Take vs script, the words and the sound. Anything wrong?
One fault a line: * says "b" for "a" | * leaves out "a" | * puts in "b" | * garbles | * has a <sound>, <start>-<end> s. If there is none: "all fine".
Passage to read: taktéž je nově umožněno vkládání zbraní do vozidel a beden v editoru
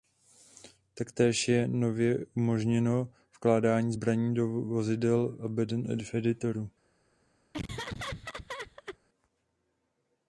* has a laugh, 7.5-9.0 s